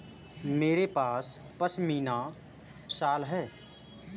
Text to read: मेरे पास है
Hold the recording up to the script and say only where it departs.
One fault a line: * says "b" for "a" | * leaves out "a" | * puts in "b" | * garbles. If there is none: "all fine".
* puts in "पशमीना शॉल"